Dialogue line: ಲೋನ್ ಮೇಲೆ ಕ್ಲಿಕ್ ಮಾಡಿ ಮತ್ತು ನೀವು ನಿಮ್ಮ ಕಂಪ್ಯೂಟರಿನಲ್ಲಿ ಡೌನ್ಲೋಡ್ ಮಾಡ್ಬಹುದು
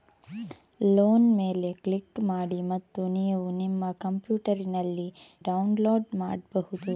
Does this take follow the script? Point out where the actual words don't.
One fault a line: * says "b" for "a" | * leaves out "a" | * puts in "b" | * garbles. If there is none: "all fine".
all fine